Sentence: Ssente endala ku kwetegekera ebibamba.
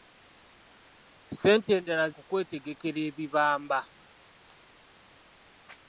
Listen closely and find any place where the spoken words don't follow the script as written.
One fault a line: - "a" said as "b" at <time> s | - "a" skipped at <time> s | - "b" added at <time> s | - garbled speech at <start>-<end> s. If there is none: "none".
none